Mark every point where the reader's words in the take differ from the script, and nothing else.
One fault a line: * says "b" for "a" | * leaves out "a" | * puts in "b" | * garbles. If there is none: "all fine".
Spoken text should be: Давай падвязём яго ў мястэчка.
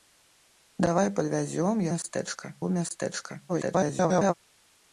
* says "мястэчка" for "яго"
* garbles